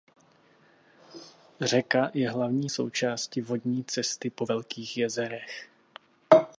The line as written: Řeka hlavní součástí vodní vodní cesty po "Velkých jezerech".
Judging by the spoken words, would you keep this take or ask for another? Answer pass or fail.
fail